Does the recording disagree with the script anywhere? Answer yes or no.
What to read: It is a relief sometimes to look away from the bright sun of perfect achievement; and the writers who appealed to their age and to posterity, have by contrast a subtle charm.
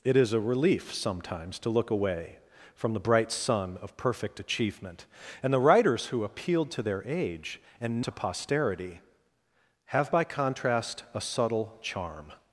no